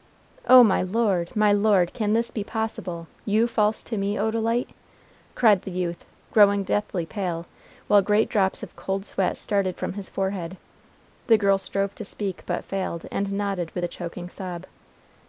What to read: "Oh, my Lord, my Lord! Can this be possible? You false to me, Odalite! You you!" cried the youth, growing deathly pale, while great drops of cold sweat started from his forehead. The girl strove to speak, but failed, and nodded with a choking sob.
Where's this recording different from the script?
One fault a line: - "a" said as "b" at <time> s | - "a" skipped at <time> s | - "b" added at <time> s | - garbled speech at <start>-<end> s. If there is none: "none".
- "You you" skipped at 4.7 s